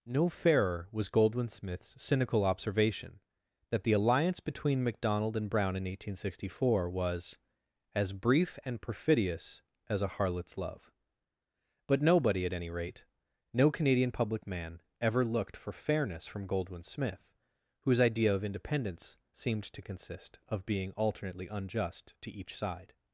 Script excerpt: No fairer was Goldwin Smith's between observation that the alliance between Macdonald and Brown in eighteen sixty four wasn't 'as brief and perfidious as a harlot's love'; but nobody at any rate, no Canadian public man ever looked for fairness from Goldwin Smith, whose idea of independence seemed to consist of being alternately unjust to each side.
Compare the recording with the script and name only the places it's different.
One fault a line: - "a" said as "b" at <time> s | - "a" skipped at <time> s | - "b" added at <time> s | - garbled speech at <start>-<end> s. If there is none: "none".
- "between" said as "cynical" at 2.0 s
- "wasn't" said as "was" at 6.9 s